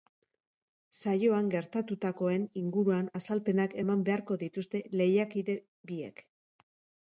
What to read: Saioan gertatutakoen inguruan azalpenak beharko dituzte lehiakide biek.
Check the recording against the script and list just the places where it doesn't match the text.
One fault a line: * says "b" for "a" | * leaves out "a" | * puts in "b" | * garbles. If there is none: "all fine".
* puts in "eman"